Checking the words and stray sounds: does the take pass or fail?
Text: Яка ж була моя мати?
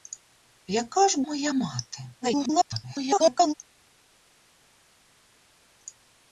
fail